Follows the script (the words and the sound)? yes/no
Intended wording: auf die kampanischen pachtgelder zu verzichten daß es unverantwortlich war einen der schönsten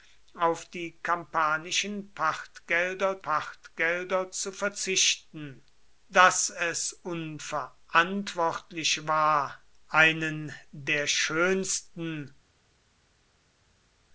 no